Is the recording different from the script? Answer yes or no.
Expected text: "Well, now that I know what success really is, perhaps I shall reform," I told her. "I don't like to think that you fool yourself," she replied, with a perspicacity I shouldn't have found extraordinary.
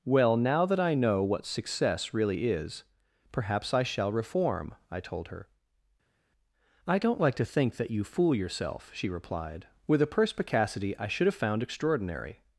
yes